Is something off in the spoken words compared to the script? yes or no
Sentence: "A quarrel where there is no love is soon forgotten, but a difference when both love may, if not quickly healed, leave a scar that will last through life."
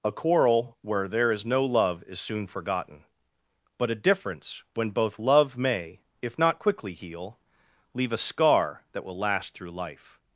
yes